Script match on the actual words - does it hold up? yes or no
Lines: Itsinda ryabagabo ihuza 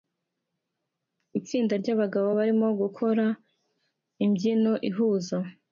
no